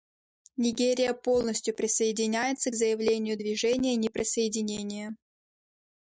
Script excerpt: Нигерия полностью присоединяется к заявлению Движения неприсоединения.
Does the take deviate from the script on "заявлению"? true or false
false